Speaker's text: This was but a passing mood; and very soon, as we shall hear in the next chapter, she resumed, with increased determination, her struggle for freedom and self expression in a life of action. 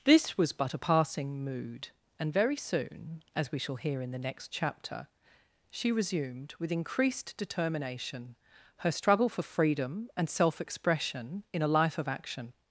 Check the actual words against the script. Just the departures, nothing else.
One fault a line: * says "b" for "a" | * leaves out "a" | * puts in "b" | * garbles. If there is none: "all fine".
all fine